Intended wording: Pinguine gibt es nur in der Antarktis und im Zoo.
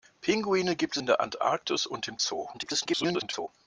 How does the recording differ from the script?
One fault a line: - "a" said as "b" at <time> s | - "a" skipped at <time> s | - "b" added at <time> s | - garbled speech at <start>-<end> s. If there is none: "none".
- "es nur" skipped at 1.0 s
- garbled speech at 2.5-3.5 s